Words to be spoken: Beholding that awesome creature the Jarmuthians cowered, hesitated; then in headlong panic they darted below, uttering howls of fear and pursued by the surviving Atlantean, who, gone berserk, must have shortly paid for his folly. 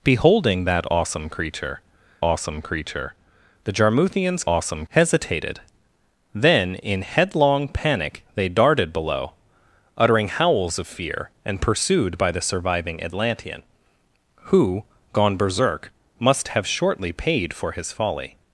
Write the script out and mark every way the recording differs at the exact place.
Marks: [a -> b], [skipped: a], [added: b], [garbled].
Beholding that awesome creature [added: awesome creature] the Jarmuthians [cowered, -> awesome] hesitated; then in headlong panic they darted below, uttering howls of fear and pursued by the surviving Atlantean, who, gone berserk, must have shortly paid for his folly.